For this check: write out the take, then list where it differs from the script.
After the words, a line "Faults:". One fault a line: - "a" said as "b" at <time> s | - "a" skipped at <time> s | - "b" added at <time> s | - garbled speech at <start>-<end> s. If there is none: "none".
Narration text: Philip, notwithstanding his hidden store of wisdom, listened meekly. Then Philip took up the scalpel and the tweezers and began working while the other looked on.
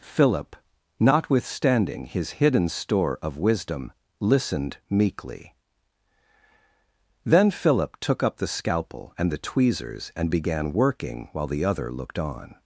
Philip, notwithstanding his hidden store of wisdom, listened meekly. Then Philip took up the scalpel and the tweezers and began working while the other looked on.
Faults:
none